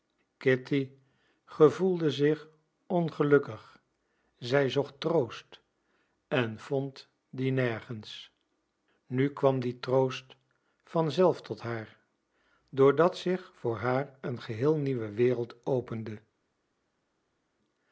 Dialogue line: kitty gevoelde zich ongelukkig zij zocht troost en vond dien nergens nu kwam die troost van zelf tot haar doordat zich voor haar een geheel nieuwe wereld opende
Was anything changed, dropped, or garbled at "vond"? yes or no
no